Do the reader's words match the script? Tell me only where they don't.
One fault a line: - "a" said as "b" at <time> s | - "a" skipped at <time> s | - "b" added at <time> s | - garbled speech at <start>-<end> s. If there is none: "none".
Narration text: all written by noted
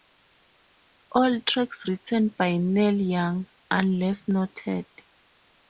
- "tracks" added at 1.4 s
- "neil young unless" added at 2.6 s